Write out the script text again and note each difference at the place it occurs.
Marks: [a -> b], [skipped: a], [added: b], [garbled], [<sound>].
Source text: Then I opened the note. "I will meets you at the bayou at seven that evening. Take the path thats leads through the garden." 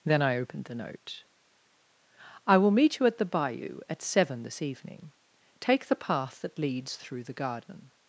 Then I opened the note. "I will [meets -> meet] you at the bayou at seven [that -> this] evening. Take the path [thats -> that] leads through the garden."